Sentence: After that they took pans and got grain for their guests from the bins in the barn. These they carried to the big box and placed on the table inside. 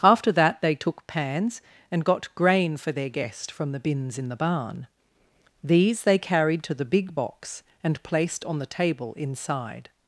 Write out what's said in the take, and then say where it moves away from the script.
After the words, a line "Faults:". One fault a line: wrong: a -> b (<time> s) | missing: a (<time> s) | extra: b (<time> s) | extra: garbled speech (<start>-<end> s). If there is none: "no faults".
After that they took pans and got grain for their guest from the bins in the barn. These they carried to the big box and placed on the table inside.
Faults:
wrong: guests -> guest (3.1 s)